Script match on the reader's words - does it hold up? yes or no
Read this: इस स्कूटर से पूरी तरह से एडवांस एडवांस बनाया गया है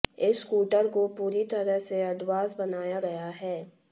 no